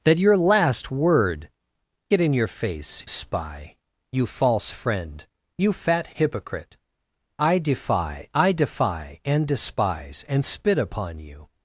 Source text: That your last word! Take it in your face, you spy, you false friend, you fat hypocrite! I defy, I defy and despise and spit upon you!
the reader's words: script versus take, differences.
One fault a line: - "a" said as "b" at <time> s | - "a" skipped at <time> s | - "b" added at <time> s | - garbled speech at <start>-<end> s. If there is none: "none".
- "Take" skipped at 1.5 s
- "you" skipped at 3.1 s